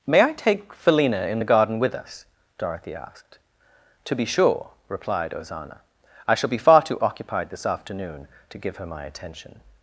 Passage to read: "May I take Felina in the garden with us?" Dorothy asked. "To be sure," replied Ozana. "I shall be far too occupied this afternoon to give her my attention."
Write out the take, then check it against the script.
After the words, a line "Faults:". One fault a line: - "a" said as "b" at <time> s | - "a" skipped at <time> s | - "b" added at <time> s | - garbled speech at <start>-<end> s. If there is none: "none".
"May I take Felina in the garden with us?" Dorothy asked. "To be sure," replied Ozana. "I shall be far too occupied this afternoon to give her my attention."
Faults:
none